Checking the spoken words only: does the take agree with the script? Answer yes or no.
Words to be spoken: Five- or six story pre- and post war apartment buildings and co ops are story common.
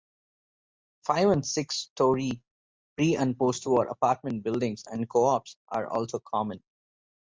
no